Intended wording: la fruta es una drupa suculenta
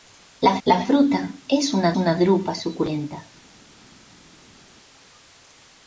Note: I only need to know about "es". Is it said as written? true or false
true